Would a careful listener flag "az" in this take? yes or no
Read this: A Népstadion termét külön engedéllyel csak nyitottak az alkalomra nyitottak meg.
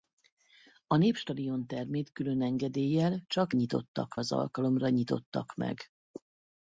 no